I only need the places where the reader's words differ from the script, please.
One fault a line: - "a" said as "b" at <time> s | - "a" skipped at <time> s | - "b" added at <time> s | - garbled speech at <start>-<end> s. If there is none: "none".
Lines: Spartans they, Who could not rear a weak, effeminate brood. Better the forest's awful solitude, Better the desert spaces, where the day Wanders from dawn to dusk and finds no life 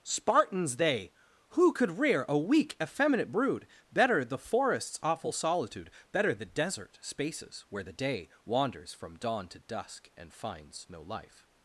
- "not" skipped at 2.0 s